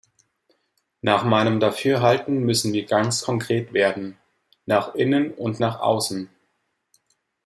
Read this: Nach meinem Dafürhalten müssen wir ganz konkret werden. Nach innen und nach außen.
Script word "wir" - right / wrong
right